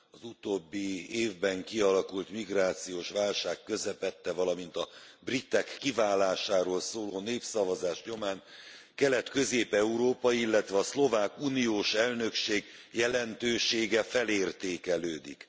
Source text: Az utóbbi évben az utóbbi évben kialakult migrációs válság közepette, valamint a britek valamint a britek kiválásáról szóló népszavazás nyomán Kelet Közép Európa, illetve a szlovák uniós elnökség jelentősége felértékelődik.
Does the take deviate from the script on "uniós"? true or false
false